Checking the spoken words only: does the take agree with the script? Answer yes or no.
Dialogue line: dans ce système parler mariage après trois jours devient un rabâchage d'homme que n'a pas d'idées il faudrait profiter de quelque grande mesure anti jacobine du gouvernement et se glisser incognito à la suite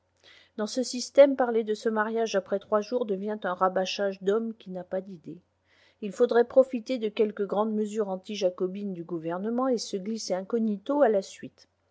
no